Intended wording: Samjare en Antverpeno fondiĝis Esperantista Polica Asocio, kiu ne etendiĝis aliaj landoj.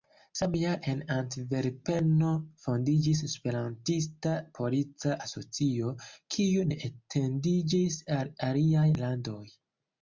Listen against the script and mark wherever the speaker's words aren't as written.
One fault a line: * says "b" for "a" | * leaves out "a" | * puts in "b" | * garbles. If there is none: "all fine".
* puts in "al"